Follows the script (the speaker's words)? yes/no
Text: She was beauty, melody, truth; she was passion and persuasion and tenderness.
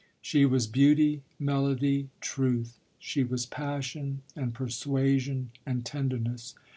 yes